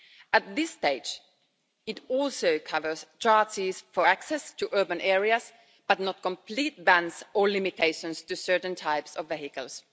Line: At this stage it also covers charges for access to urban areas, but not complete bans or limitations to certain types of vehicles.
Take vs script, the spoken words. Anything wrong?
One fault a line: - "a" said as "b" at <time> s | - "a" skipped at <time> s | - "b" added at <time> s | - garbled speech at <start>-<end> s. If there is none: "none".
none